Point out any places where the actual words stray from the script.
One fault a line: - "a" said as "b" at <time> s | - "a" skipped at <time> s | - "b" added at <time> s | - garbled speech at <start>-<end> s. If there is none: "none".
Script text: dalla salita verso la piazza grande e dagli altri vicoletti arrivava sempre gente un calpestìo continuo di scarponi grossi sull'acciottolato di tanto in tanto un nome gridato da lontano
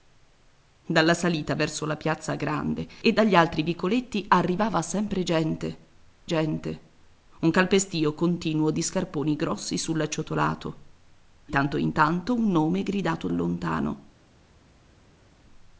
- "gente" added at 6.2 s
- "di" skipped at 10.8 s
- "da" skipped at 13.3 s